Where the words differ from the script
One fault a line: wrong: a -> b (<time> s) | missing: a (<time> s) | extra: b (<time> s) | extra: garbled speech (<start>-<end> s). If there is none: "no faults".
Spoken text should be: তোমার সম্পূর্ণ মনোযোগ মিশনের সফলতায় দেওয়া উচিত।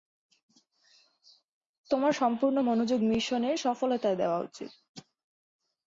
no faults